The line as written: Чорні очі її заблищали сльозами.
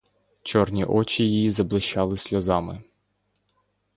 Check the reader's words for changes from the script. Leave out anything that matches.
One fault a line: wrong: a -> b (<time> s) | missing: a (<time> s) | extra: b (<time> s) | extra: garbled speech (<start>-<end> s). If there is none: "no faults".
no faults